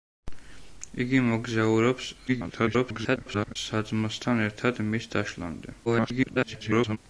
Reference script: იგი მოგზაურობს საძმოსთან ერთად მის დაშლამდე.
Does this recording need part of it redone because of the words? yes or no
yes